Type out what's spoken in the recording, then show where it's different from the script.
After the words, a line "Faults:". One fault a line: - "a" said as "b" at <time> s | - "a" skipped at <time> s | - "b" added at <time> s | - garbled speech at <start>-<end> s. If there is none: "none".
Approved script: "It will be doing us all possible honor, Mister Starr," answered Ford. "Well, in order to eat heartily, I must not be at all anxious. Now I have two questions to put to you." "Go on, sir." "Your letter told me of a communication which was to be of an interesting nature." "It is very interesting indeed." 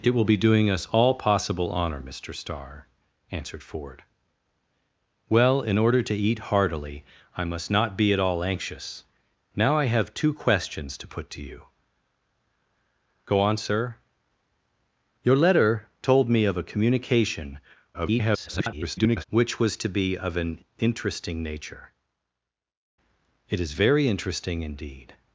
"It will be doing us all possible honor, Mister Starr," answered Ford. "Well, in order to eat heartily, I must not be at all anxious. Now I have two questions to put to you." "Go on, sir." "Your letter told me of a communication [garbled] which was to be of an interesting nature." "It is very interesting indeed."
Faults:
- garbled speech at 17.9-19.2 s